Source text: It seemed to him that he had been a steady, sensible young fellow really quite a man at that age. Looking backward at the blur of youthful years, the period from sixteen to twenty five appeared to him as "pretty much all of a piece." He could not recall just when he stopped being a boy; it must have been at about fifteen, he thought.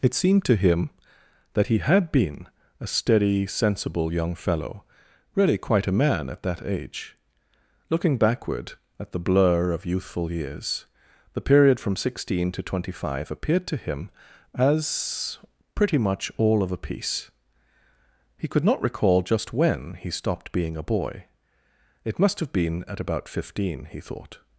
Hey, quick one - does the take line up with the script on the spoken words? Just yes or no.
yes